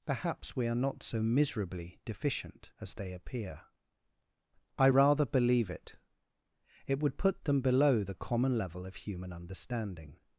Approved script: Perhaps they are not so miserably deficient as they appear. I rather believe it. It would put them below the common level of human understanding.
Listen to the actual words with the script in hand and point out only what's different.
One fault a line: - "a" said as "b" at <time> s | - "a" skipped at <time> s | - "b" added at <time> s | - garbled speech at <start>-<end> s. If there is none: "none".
- "they" said as "we" at 0.6 s